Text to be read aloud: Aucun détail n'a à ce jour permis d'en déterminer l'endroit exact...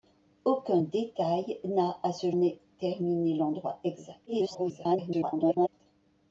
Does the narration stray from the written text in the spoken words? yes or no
yes